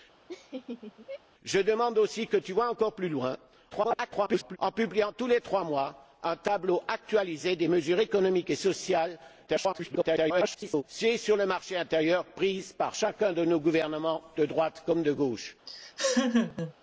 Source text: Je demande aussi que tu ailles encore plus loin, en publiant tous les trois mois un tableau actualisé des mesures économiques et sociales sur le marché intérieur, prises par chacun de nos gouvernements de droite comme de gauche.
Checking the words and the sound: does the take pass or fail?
fail